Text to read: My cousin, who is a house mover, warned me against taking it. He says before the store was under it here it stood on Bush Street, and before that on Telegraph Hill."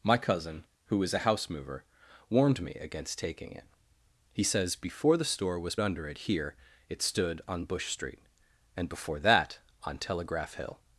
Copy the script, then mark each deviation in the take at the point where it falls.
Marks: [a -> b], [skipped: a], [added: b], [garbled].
My cousin, who is a house mover, warned me against taking it. He says before the store was under it here it stood on Bush Street, and before that on Telegraph Hill."